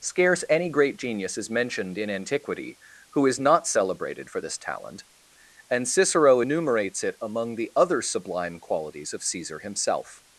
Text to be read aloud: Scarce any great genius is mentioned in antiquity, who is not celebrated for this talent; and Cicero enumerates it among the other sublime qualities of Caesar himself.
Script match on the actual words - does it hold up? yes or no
yes